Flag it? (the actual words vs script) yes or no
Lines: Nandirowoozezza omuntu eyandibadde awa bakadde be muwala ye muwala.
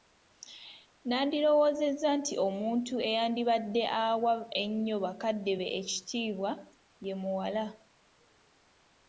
yes